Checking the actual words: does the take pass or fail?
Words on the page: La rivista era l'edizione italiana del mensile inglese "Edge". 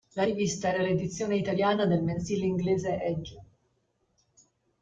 pass